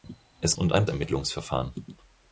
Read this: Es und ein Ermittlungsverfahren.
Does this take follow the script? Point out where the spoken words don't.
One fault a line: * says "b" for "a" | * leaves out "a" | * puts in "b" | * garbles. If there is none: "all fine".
all fine